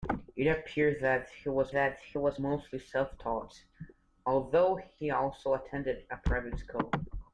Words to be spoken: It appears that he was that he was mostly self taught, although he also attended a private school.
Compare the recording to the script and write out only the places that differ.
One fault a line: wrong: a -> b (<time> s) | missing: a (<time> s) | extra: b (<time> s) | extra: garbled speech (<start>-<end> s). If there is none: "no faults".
no faults